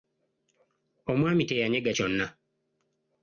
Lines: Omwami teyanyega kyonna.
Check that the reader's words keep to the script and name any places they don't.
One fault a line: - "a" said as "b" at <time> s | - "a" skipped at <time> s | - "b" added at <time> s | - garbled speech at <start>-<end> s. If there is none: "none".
none